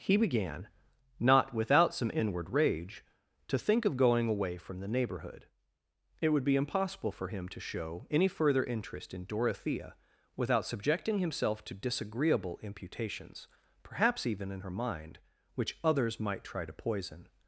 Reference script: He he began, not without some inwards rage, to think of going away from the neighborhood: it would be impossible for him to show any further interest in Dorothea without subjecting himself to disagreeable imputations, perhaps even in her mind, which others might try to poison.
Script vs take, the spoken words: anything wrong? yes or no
yes